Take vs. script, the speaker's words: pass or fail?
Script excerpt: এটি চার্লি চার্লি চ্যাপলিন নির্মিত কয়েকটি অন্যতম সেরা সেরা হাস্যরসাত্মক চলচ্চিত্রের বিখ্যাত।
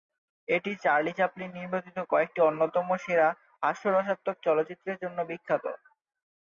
fail